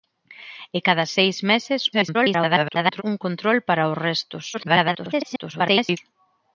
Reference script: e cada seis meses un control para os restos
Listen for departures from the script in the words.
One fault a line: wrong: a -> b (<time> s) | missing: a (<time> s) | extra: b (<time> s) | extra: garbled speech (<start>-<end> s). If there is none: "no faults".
extra: garbled speech (1.9-3.0 s)
extra: garbled speech (4.5-6.0 s)